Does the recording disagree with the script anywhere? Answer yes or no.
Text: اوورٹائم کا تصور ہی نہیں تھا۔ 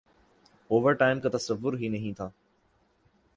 no